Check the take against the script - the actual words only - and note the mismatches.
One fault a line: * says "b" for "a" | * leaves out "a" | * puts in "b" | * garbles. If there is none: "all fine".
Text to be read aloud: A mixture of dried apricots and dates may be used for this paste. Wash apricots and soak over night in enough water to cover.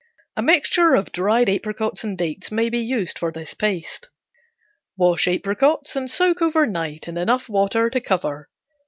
all fine